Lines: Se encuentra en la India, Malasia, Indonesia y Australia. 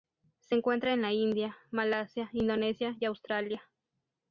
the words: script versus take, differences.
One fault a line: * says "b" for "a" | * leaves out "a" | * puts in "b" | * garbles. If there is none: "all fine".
all fine